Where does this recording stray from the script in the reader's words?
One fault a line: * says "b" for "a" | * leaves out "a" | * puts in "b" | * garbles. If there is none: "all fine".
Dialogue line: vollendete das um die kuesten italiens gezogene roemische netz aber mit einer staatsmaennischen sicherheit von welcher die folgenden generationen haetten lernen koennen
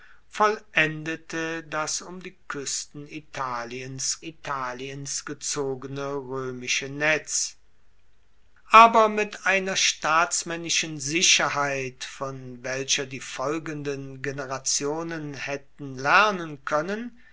* puts in "italiens"